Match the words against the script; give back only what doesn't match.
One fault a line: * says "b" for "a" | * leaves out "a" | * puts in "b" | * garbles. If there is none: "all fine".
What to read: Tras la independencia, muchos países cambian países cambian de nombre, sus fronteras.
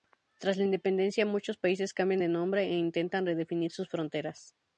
* says "de nombre e intentan redefinir" for "países cambian de nombre"